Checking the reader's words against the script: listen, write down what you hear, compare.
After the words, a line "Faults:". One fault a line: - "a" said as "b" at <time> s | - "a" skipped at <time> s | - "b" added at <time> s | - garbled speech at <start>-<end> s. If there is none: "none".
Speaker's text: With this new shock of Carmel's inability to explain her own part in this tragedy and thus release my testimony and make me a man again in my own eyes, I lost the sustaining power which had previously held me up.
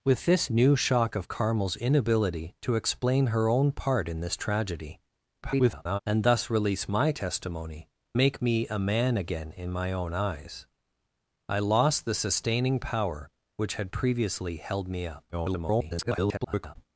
With this new shock of Carmel's inability to explain her own part in this tragedy [garbled] and thus release my testimony make me a man again in my own eyes, I lost the sustaining power which had previously held me up. [garbled]
Faults:
- garbled speech at 5.4-6.0 s
- "and" skipped at 7.9 s
- garbled speech at 15.3-16.8 s